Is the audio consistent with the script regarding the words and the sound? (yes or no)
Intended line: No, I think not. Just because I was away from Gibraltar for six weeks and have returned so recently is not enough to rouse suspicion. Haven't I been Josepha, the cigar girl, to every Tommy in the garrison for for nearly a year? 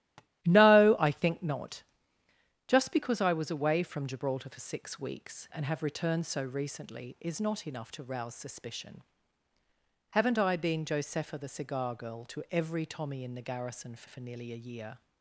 no